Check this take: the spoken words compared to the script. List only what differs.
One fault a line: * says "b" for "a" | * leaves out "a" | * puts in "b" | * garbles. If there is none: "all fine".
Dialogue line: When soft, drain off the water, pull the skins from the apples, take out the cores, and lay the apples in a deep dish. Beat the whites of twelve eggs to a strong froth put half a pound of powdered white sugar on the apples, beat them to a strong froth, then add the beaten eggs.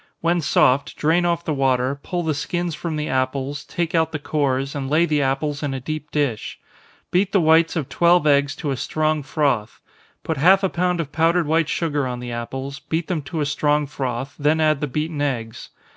all fine